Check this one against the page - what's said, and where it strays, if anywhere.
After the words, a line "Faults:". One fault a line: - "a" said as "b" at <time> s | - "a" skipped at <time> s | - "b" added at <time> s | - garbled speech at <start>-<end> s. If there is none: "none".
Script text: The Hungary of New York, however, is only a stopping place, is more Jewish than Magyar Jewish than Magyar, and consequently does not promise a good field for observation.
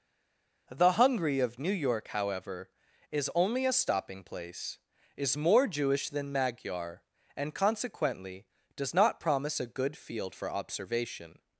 The Hungary of New York, however, is only a stopping place, is more Jewish than Magyar, and consequently does not promise a good field for observation.
Faults:
- "Jewish than Magyar" skipped at 7.0 s